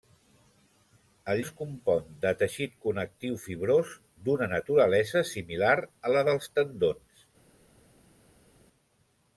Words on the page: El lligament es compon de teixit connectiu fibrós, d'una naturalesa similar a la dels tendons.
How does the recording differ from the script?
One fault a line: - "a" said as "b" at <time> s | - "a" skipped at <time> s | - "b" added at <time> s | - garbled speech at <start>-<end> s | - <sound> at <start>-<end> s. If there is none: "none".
- "lligament" skipped at 1.4 s